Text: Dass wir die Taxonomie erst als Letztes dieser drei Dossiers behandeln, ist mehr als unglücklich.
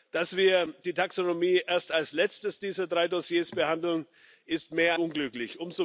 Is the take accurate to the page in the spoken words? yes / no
no